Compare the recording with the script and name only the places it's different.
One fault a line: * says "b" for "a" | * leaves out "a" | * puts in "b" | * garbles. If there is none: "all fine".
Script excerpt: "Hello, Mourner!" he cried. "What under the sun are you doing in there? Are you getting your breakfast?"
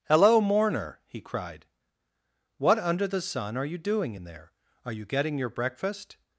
all fine